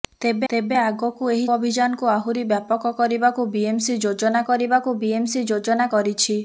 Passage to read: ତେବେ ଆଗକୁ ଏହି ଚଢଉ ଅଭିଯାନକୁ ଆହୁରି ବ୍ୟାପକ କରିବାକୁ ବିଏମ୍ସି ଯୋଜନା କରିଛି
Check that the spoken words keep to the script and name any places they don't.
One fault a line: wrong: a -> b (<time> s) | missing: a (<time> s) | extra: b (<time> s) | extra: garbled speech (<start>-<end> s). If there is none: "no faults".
extra: ତେବେ (0.5 s)
missing: ଚଢଉ (1.5 s)
extra: କରିବାକୁ ବିଏମ୍ସି ଯୋଜନା (4.5 s)